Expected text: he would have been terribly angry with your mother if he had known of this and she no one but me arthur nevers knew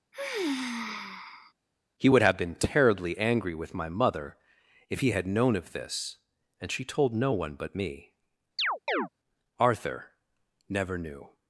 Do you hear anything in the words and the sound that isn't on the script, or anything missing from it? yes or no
yes